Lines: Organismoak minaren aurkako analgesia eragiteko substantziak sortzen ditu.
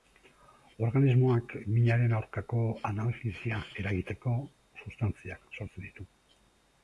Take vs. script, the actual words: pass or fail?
pass